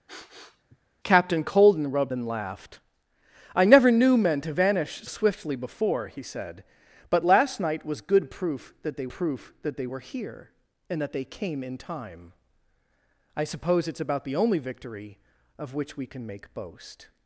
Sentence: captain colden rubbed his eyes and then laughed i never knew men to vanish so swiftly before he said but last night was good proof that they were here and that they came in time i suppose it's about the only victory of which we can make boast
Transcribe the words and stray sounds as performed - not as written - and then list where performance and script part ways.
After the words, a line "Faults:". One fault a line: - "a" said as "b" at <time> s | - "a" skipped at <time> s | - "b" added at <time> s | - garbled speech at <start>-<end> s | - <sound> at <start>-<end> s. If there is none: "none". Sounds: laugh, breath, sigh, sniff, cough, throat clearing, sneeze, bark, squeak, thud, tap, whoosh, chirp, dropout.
captain colden rubbed then laughed i never knew men to vanish swiftly before he said but last night was good proof that they proof that they were here and that they came in time i suppose it's about the only victory of which we can make boast
Faults:
- sniff at 0.1-0.8 s
- "his eyes and" skipped at 2.1 s
- "so" skipped at 5.1 s
- "proof that they" added at 9.1 s